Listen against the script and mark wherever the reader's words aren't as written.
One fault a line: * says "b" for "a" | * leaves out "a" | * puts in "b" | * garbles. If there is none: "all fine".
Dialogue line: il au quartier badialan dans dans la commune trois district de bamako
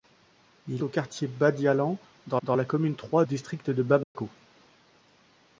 all fine